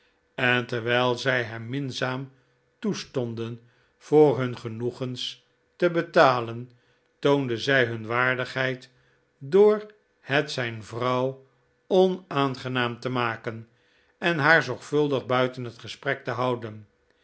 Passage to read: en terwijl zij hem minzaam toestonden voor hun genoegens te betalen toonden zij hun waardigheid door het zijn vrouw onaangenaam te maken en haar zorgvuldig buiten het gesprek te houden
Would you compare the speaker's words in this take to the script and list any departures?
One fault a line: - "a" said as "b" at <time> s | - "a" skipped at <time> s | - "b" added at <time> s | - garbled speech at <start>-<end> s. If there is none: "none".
none